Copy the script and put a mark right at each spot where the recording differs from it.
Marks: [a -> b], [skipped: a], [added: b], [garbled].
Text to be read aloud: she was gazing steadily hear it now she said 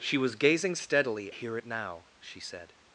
she was gazing steadily hear it now she said